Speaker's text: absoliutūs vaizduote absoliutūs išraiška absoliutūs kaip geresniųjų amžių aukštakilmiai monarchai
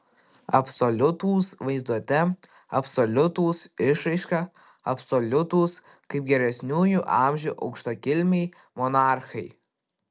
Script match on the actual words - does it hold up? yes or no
yes